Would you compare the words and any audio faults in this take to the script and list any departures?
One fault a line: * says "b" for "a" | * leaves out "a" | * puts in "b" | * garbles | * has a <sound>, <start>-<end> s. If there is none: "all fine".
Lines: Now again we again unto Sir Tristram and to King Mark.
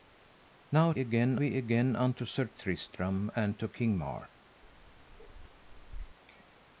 * has a bark, 4.6-6.2 s